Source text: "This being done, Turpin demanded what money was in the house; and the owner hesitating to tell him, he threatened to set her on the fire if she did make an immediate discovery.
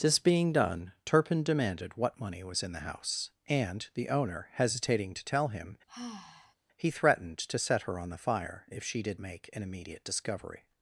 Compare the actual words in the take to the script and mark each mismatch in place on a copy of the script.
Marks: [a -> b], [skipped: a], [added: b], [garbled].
"This being done, Turpin demanded what money was in the house; and the owner hesitating to tell him, he threatened to set her on the fire if she did make an immediate discovery.